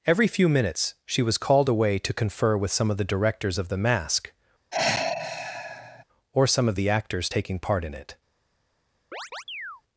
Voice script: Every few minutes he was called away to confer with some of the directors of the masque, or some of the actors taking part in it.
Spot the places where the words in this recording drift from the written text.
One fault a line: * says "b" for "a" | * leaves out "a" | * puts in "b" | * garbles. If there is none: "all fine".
* says "she" for "he"